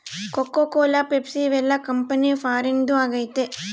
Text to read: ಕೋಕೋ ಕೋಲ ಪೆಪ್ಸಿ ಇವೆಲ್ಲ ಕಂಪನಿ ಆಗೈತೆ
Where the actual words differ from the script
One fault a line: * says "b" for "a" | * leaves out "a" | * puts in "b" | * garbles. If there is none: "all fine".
* puts in "ಫಾರಿನ್ದು"